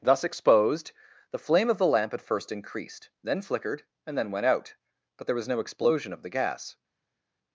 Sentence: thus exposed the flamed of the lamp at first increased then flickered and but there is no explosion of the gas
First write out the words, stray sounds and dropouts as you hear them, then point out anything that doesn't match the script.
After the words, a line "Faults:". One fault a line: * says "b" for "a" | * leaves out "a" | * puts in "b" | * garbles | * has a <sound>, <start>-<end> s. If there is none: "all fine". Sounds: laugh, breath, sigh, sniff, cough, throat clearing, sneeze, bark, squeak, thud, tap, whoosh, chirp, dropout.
thus exposed the flame of the lamp at first increased then flickered and then went out but there was no explosion of the gas
Faults:
* says "flame" for "flamed"
* puts in "then went out"
* says "was" for "is"